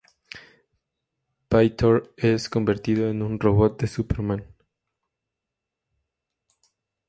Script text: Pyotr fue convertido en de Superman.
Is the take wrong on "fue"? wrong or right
wrong